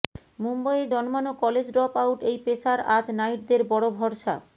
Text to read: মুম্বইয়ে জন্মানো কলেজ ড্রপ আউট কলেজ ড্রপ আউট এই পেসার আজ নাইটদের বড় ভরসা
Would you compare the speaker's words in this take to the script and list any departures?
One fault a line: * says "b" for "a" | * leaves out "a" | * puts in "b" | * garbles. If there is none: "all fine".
* leaves out "কলেজ ড্রপ আউট"